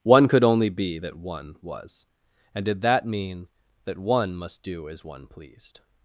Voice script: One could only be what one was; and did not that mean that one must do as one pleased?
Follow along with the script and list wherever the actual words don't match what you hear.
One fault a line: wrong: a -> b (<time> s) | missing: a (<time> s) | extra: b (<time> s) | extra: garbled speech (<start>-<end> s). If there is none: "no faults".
wrong: what -> that (1.0 s)
missing: not (2.8 s)